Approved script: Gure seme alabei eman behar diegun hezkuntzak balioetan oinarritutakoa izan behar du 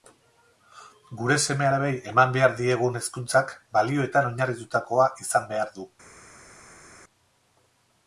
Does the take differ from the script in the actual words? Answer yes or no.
no